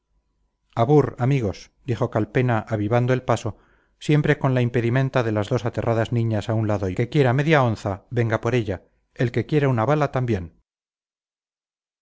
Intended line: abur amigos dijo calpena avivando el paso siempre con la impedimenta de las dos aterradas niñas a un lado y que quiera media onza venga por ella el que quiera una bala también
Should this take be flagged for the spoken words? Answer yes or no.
no